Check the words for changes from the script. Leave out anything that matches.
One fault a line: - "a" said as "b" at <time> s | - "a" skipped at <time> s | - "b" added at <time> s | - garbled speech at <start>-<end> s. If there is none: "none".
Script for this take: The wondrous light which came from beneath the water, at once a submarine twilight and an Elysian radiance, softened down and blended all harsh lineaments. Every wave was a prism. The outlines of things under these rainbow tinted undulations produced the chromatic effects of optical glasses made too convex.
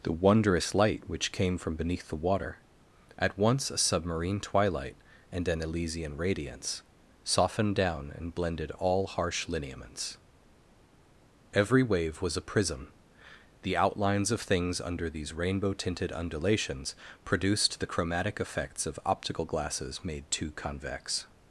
none